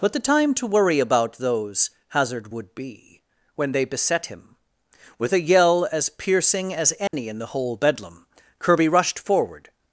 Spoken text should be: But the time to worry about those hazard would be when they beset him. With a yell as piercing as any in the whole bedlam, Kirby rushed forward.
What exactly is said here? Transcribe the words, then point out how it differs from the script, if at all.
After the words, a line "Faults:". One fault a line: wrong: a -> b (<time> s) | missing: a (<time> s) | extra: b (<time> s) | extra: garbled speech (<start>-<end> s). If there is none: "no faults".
But the time to worry about those hazard would be when they beset him. With a yell as piercing as any in the whole bedlam, Kirby rushed forward.
Faults:
no faults